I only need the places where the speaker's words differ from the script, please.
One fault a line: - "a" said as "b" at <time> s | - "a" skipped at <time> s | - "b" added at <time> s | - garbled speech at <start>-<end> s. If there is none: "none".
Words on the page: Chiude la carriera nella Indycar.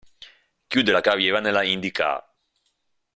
none